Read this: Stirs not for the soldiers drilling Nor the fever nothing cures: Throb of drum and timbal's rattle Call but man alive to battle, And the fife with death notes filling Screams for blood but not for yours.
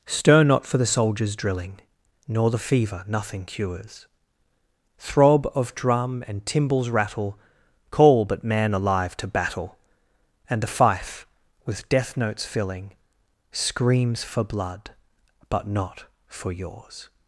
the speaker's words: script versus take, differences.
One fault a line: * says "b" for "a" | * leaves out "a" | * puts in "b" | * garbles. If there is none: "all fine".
* says "Stir" for "Stirs"